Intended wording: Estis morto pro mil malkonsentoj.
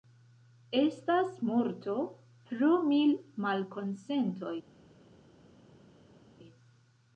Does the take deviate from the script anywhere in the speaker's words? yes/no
yes